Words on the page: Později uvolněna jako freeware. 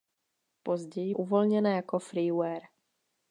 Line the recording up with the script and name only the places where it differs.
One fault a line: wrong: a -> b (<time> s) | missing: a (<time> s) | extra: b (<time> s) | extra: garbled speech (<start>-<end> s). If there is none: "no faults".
no faults